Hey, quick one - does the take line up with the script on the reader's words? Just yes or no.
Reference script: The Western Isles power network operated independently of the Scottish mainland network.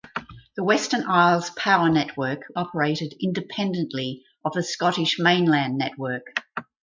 yes